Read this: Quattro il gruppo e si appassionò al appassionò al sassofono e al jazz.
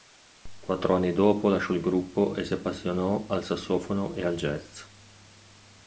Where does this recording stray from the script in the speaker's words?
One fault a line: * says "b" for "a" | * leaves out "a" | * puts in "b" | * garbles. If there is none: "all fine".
* puts in "anni dopo lasciò"
* leaves out "appassionò al"